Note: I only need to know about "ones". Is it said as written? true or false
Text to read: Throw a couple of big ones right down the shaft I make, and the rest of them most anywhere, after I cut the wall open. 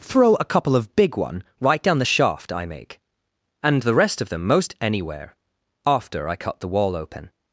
false